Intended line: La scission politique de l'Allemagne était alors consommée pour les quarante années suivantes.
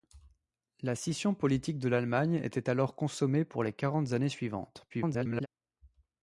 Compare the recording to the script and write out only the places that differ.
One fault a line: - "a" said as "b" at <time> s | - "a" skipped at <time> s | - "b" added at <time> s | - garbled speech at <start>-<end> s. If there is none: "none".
- garbled speech at 4.9-5.5 s